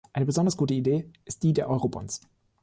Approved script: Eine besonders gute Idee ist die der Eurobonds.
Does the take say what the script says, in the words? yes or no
yes